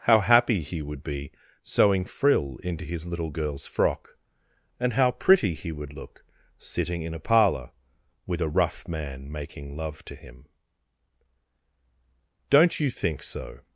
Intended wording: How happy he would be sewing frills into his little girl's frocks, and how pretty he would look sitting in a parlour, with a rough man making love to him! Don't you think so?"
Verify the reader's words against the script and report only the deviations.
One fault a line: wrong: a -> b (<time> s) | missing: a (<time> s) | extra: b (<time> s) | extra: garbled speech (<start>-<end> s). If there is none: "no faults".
wrong: frills -> frill (2.0 s)
wrong: frocks -> frock (3.7 s)